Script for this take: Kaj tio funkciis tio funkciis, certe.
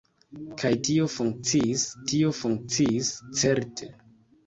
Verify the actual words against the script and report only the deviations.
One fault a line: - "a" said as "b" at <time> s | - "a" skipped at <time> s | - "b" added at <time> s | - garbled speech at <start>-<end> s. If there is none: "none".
none